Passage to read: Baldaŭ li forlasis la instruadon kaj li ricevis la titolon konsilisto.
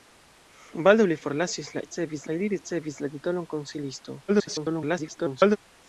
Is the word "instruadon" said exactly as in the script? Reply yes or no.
no